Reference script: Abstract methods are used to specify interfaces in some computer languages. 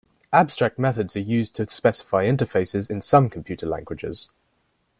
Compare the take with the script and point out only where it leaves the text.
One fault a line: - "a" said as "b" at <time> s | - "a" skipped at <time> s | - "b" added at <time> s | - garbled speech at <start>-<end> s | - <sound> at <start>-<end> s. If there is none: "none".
none